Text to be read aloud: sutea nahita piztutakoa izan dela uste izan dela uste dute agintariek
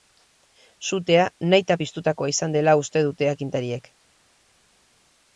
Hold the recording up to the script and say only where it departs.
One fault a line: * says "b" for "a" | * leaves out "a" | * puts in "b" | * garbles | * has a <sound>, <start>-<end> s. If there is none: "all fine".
* leaves out "izan dela uste"